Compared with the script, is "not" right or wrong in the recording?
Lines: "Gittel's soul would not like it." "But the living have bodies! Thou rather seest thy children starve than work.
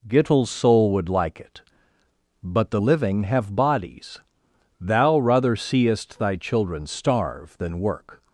wrong